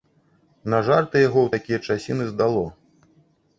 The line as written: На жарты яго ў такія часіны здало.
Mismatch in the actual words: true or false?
false